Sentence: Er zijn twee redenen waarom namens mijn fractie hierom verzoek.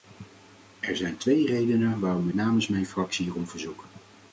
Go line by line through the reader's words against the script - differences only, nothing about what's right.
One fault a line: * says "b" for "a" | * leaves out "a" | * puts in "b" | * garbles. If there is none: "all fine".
all fine